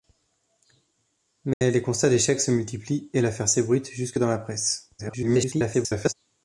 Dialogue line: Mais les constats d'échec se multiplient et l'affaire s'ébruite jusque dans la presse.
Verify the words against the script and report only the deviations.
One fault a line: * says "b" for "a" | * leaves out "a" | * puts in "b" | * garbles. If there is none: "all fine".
* garbles